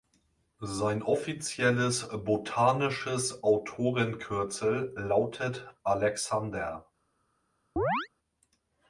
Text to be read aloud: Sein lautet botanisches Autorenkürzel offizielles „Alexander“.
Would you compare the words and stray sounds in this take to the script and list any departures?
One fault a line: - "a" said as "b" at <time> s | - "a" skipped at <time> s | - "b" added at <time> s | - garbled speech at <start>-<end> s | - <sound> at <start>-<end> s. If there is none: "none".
- "lautet" said as "offizielles" at 1.0 s
- "offizielles" said as "lautet" at 5.0 s
- chirp at 7.8-8.1 s